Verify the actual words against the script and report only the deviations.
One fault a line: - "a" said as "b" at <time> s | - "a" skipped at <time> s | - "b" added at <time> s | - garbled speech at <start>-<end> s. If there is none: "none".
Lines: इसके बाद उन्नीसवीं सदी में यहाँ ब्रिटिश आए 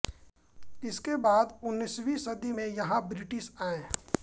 none